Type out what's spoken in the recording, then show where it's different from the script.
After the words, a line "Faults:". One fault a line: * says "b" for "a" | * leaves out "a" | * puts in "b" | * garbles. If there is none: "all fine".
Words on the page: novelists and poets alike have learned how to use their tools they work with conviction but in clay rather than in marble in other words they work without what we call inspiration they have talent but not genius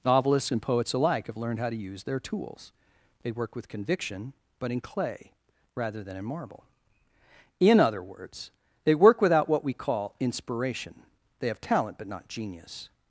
novelists and poets alike have learned how to use their tools they work with conviction but in clay rather than in marble in other words they work without what we call inspiration they have talent but not genius
Faults:
all fine